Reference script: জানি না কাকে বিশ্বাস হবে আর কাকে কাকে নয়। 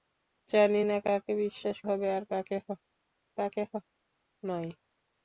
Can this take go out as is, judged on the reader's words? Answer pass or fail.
pass